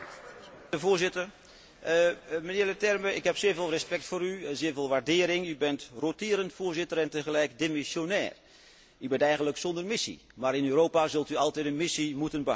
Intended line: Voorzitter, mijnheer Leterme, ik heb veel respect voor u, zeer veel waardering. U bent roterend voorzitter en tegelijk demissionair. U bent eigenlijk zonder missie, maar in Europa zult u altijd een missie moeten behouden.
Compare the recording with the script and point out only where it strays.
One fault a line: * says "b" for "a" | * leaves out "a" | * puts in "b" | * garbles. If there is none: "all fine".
* puts in "zeer"